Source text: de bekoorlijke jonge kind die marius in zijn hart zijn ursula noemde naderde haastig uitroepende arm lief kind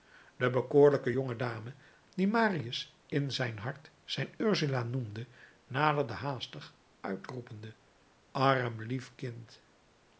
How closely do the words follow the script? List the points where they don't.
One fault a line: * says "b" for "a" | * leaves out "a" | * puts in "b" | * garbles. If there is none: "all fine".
* says "dame" for "kind"